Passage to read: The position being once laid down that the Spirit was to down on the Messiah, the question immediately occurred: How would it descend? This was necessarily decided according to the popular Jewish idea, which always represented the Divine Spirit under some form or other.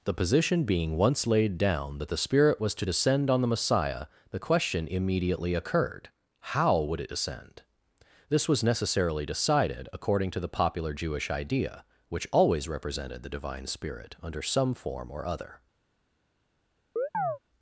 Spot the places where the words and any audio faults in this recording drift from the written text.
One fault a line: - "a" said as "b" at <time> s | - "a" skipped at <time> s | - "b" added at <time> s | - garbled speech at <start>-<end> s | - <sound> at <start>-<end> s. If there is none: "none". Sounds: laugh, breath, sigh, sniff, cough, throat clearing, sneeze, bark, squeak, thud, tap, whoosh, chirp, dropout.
- "down" said as "descend" at 2.8 s
- chirp at 17.0-17.4 s